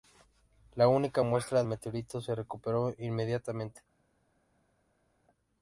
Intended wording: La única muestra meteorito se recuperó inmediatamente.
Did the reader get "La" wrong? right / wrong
right